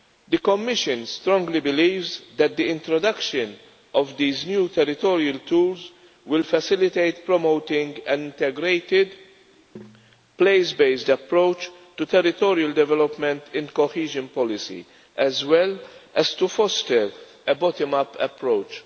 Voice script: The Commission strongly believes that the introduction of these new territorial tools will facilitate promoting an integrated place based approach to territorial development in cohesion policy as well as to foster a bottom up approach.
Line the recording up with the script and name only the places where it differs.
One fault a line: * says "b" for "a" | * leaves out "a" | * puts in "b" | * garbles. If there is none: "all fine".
all fine